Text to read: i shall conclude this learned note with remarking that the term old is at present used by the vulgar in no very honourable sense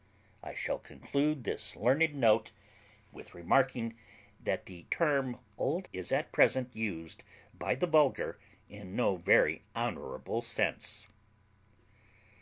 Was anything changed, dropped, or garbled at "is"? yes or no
no